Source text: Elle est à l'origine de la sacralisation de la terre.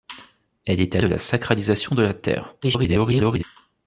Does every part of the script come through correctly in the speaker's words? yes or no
no